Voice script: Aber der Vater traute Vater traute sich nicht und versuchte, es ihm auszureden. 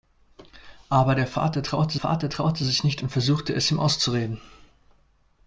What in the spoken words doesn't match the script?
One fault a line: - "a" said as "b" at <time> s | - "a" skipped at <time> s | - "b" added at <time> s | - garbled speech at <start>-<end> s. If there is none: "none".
none